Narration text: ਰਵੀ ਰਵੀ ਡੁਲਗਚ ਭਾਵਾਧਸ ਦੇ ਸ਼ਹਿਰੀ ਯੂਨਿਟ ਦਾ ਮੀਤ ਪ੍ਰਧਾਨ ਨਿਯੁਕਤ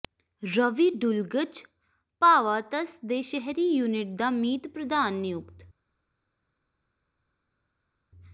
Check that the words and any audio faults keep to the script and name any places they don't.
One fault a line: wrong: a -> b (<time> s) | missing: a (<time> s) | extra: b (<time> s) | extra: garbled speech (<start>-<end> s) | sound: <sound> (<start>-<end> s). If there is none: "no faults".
missing: ਰਵੀ (0.9 s)